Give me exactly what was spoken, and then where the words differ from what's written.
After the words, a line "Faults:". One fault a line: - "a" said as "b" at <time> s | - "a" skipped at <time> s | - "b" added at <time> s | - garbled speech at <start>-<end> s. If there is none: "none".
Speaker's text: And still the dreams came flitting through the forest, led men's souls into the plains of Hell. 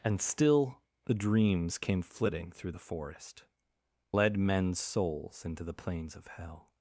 And still the dreams came flitting through the forest, led men's souls into the plains of Hell.
Faults:
none